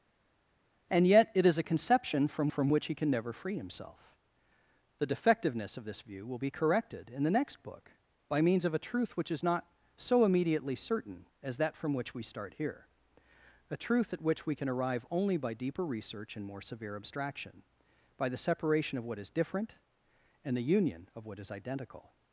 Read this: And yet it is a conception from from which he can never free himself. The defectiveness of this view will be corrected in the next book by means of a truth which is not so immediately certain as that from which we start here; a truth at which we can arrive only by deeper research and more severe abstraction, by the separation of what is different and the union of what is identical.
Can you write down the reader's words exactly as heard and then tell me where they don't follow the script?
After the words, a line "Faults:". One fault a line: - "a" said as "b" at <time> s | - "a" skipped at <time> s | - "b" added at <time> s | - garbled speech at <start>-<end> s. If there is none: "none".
And yet it is a conception from from which he can never free himself. The defectiveness of this view will be corrected in the next book by means of a truth which is not so immediately certain as that from which we start here; a truth at which we can arrive only by deeper research and more severe abstraction, by the separation of what is different and the union of what is identical.
Faults:
none